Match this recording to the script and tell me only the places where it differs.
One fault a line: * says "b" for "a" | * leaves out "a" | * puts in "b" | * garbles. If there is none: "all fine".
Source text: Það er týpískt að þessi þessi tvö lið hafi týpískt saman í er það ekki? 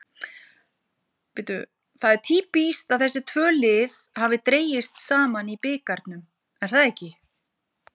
* leaves out "þessi"
* says "dregist" for "týpískt"
* puts in "bikarnum"